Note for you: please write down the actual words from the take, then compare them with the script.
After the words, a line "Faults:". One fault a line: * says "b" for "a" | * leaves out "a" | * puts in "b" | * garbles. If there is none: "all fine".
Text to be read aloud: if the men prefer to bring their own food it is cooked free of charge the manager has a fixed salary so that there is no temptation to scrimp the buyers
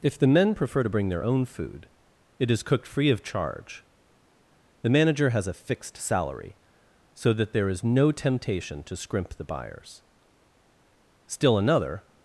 if the men prefer to bring their own food it is cooked free of charge the manager has a fixed salary so that there is no temptation to scrimp the buyers still another
Faults:
* puts in "still another"